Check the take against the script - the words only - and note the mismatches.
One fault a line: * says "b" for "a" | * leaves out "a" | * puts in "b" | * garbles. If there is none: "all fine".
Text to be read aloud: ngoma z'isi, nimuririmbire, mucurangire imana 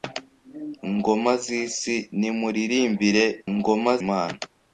* says "ngoma" for "mucurangire"